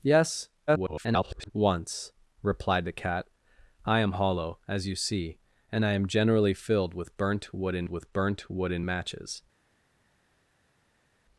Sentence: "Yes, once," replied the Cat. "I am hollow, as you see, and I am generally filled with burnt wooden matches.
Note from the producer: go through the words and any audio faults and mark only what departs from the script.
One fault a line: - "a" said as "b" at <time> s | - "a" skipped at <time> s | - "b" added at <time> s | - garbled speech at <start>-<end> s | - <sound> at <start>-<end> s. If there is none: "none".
- garbled speech at 0.7-1.5 s
- "with burnt wooden" added at 7.9 s